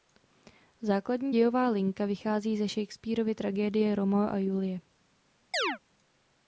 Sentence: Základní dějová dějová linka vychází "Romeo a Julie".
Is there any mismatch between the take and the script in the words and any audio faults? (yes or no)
yes